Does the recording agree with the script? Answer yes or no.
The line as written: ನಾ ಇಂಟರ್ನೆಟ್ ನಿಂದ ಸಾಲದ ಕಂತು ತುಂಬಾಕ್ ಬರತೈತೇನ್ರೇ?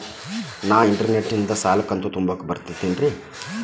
yes